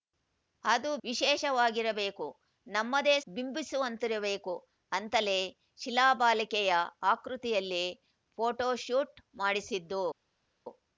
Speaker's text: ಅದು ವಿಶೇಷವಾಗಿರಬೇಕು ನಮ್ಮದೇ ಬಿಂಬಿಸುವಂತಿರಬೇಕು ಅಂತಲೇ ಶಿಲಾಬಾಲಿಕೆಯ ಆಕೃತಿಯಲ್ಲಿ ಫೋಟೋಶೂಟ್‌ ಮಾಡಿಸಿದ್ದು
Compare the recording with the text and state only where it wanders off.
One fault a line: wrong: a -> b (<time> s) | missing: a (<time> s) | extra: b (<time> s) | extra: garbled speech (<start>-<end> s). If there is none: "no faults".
no faults